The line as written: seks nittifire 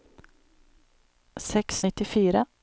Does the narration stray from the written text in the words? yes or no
no